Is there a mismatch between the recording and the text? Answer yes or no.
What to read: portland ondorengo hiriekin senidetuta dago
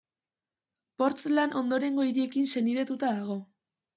no